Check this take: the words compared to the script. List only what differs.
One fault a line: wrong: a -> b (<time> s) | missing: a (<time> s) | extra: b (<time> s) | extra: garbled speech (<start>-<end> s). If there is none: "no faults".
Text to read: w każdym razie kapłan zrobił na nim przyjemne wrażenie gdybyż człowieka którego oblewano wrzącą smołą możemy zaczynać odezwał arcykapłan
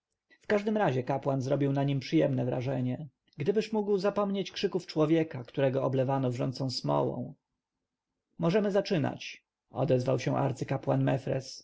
extra: mógł zapomnieć krzyków (3.7 s)
extra: się (10.2 s)